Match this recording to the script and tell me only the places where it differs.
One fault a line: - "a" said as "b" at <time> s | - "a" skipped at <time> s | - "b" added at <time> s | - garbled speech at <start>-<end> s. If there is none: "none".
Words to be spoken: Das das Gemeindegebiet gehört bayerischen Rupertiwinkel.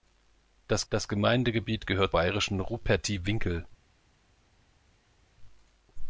none